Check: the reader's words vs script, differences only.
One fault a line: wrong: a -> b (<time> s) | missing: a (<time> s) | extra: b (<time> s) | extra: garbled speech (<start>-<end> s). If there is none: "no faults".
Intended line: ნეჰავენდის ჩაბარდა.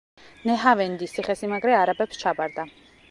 extra: ციხესიმაგრე არაბებს (1.2 s)